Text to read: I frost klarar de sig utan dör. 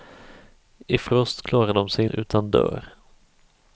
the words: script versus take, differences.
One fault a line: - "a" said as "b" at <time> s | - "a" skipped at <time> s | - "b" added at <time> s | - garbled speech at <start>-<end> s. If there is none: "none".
none